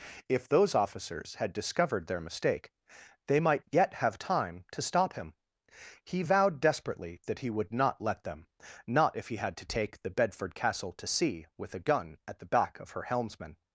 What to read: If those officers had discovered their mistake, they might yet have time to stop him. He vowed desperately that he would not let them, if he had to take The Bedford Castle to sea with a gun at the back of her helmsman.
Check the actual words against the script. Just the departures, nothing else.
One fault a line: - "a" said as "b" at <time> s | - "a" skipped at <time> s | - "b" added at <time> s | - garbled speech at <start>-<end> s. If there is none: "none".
- "not" added at 8.9 s